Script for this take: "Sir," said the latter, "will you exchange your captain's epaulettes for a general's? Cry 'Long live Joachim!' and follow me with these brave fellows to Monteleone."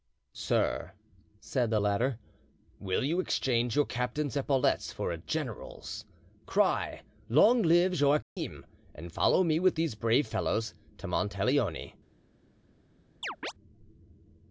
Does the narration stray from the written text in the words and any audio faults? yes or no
yes